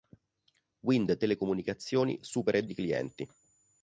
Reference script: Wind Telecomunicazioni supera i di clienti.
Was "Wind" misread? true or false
false